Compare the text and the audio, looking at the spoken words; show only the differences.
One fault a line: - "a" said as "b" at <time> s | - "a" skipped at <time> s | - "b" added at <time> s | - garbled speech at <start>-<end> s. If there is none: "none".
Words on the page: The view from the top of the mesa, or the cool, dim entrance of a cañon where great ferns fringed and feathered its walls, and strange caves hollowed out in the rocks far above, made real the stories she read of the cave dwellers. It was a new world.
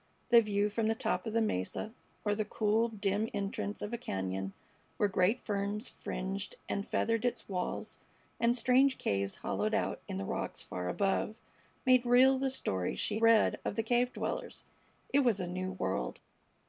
none